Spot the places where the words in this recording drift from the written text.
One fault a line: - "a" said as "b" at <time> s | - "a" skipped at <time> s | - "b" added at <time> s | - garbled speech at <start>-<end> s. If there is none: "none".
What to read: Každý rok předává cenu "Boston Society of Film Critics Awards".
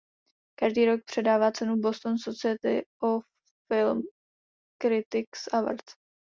none